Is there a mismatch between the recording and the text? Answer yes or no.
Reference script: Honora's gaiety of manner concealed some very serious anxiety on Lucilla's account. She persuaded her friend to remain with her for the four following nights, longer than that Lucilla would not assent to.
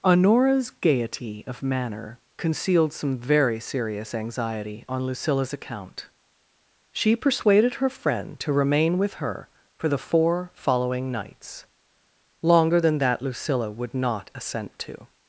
no